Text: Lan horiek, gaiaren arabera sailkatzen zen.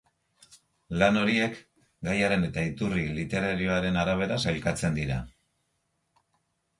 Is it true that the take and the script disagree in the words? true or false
true